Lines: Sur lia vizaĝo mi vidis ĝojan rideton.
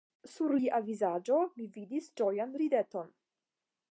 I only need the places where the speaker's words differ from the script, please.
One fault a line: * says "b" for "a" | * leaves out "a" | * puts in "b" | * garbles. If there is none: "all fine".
all fine